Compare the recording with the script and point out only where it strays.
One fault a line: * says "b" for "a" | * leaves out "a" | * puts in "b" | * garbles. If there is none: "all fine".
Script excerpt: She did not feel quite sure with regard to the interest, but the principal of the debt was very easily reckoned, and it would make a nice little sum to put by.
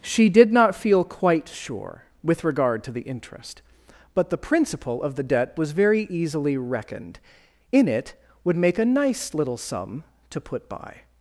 * says "in" for "and"